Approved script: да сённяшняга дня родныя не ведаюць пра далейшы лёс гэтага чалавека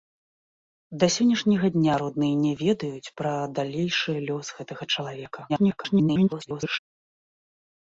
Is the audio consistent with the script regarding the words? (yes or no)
no